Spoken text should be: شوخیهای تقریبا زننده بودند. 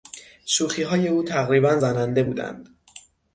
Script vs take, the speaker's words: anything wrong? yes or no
yes